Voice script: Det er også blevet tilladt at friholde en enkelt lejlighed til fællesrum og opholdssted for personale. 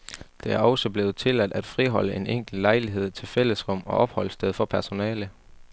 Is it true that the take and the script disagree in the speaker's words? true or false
false